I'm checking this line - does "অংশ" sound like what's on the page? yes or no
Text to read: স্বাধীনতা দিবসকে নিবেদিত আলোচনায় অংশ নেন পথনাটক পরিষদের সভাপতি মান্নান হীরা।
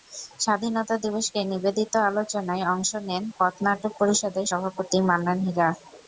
yes